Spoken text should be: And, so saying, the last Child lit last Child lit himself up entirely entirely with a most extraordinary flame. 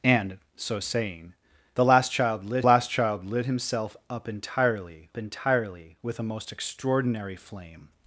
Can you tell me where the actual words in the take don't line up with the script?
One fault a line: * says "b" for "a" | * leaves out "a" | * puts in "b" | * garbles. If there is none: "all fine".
all fine